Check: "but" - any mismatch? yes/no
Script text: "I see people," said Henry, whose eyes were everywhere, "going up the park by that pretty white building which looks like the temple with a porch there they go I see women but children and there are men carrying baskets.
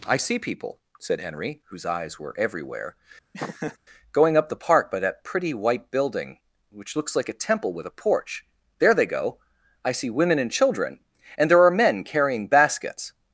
yes